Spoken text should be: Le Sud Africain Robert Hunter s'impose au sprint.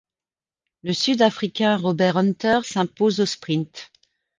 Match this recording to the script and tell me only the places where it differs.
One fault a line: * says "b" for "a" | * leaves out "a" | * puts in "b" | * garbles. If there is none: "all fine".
all fine